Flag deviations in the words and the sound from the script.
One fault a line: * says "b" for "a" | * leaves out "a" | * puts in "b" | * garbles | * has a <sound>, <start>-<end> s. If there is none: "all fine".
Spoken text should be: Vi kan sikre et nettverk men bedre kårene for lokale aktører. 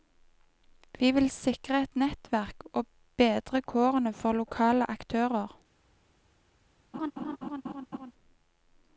* says "vil" for "kan"
* says "og" for "men"
* has a laugh, 6.9-8.1 s